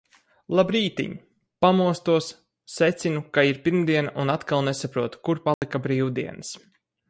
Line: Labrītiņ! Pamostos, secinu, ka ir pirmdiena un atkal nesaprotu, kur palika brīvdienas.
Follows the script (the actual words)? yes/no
yes